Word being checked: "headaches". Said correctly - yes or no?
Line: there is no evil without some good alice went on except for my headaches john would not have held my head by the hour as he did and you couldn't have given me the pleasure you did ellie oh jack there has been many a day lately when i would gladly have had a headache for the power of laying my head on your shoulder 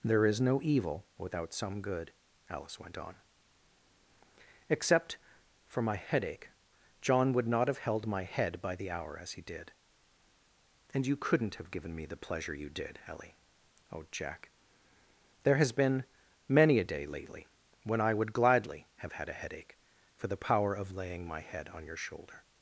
no